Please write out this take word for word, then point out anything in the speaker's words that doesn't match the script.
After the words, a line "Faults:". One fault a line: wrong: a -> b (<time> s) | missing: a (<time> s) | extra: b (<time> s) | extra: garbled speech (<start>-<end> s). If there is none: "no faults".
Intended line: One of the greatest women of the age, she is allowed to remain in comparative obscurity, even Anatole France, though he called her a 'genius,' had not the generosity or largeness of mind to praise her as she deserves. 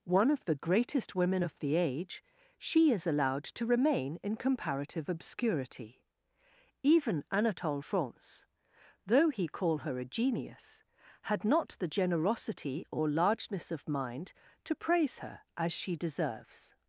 One of the greatest women of the age, she is allowed to remain in comparative obscurity, even Anatole France, though he call her a 'genius,' had not the generosity or largeness of mind to praise her as she deserves.
Faults:
wrong: called -> call (9.5 s)